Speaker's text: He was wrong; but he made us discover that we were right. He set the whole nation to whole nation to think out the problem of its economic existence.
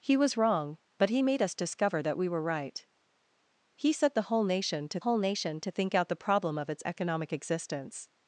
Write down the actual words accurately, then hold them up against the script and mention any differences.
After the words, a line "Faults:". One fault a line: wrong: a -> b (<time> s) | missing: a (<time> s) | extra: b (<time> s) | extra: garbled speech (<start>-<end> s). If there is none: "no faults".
He was wrong; but he made us discover that we were right. He set the whole nation to whole nation to think out the problem of its economic existence.
Faults:
no faults